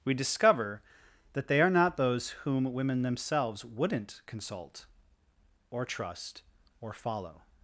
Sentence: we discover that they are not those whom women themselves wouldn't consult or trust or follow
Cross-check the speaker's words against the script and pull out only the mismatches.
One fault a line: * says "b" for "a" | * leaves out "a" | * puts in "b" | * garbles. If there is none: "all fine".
all fine